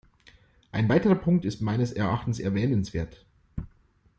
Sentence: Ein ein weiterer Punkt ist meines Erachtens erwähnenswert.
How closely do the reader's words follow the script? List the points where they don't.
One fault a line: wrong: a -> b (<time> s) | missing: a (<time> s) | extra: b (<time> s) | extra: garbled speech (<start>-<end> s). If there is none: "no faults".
missing: ein (0.9 s)